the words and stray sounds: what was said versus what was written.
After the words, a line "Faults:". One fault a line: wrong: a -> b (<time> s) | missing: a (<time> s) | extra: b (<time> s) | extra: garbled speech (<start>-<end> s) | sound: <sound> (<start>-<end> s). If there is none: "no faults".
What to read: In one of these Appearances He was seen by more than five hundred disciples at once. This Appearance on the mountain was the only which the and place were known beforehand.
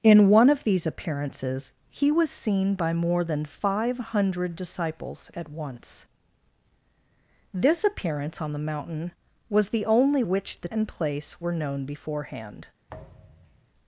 In one of these Appearances He was seen by more than five hundred disciples at once. This Appearance on the mountain was the only which the and place were known beforehand.
Faults:
sound: thud (12.9-13.7 s)